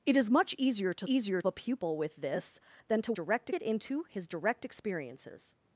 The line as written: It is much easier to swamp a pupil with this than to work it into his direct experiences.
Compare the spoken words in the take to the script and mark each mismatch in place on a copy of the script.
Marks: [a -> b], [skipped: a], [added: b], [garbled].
It is much easier to [swamp -> easier] a pupil with this than to [work -> direct] it into his direct experiences.